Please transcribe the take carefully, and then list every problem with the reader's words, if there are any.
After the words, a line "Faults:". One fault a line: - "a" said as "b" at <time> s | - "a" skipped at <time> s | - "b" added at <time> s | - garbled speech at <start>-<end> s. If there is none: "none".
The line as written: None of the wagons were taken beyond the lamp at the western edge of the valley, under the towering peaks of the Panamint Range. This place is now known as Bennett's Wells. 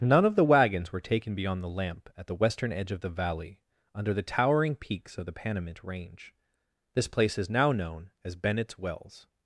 None of the wagons were taken beyond the lamp at the western edge of the valley, under the towering peaks of the Panamint Range. This place is now known as Bennett's Wells.
Faults:
none